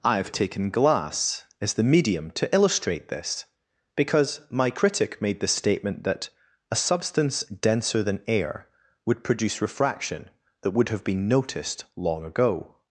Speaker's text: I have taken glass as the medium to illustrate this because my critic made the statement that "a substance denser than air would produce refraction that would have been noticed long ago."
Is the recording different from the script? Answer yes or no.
no